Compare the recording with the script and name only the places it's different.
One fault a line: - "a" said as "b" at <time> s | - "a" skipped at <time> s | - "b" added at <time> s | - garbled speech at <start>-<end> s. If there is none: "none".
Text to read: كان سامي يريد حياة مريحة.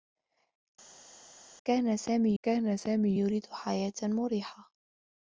- "كان سامي" added at 2.4 s